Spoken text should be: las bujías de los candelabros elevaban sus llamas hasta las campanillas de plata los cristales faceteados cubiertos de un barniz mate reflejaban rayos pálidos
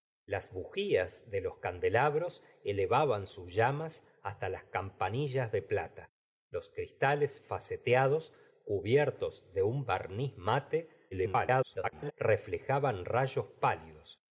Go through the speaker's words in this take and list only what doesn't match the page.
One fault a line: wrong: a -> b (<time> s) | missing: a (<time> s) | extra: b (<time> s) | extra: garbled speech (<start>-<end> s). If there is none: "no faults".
extra: garbled speech (11.1-12.1 s)